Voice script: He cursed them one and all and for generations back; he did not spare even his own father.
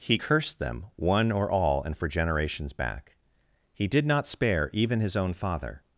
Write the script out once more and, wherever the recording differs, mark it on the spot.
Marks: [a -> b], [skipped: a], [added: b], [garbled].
He cursed them one [and -> or] all and for generations back; he did not spare even his own father.